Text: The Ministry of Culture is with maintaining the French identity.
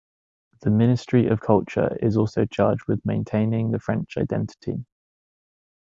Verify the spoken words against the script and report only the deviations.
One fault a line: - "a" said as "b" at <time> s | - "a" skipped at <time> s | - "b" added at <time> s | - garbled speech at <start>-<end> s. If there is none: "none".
- "also charged" added at 2.2 s